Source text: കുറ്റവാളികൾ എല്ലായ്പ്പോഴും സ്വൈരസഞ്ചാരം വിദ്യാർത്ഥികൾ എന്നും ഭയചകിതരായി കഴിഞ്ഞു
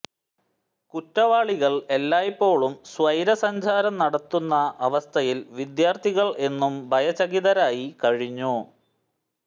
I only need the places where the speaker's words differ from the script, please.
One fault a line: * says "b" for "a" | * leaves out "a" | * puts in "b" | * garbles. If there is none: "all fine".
* puts in "നടത്തുന്ന അവസ്ഥയിൽ"